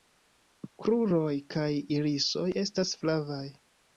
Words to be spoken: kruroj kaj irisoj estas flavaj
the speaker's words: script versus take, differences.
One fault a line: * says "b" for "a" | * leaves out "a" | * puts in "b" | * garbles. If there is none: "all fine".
all fine